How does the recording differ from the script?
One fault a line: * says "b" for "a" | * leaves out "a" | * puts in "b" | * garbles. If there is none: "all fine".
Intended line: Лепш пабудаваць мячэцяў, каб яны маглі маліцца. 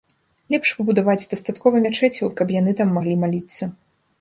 * puts in "дастаткова"
* puts in "там"